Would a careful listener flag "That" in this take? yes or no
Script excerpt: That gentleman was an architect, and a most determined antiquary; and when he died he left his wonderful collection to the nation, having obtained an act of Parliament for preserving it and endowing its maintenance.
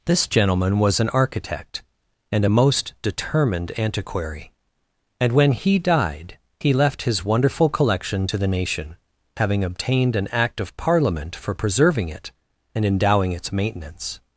yes